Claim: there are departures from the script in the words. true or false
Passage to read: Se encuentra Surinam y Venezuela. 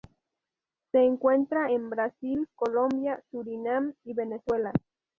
true